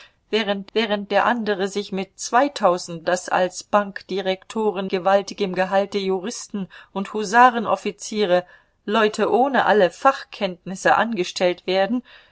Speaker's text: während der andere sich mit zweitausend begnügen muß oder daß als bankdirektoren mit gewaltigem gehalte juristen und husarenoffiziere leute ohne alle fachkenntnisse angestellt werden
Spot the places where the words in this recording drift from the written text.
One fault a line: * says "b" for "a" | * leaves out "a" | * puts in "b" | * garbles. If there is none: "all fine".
* puts in "während"
* leaves out "begnügen muß oder"
* leaves out "mit"